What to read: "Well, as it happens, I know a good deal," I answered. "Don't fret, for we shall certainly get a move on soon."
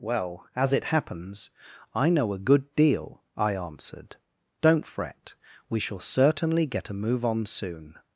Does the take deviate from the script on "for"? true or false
true